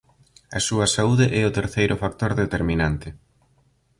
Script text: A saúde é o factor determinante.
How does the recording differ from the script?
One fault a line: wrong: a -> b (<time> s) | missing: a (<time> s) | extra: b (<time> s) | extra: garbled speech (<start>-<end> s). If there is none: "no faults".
extra: súa (0.7 s)
extra: terceiro (1.6 s)